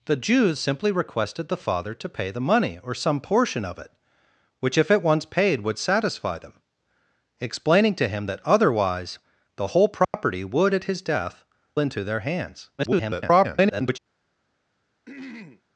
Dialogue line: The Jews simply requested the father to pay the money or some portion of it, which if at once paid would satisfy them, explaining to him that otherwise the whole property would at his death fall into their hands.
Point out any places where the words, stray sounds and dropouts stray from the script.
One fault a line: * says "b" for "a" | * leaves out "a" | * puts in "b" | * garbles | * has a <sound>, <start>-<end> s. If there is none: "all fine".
* has a dropout, 10.0-10.1 s
* leaves out "fall"
* garbles
* has a throat clearing, 15.1-15.6 s